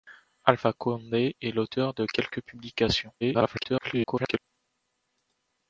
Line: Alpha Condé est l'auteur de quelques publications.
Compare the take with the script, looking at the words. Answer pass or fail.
fail